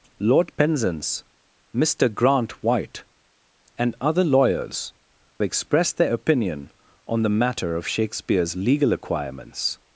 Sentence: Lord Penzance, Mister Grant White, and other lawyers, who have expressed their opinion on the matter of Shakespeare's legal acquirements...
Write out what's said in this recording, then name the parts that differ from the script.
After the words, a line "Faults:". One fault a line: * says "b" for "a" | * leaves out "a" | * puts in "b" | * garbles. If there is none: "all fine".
Lord Penzance, Mister Grant White, and other lawyers, expressed their opinion on the matter of Shakespeare's legal acquirements...
Faults:
* leaves out "who have"